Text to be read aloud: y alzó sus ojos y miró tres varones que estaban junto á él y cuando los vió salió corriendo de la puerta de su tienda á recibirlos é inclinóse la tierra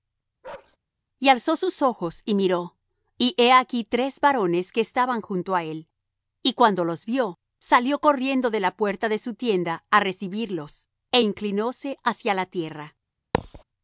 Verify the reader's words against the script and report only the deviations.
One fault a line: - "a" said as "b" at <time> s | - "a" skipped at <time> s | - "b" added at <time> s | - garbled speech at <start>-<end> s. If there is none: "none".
- "y he aquí" added at 3.2 s
- "hacia" added at 12.0 s